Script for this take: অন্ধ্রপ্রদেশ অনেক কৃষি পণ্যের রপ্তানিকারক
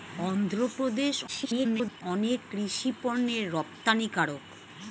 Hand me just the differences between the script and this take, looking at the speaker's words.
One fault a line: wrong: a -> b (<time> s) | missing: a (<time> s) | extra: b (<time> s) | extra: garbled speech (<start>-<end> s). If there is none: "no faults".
extra: garbled speech (1.3-2.0 s)